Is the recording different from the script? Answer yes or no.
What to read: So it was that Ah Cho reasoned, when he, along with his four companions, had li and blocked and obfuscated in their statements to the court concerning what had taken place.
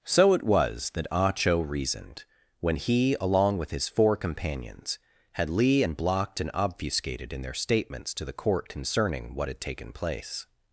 no